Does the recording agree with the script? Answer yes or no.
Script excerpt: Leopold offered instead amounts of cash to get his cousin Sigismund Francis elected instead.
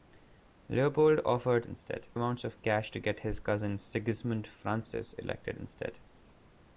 yes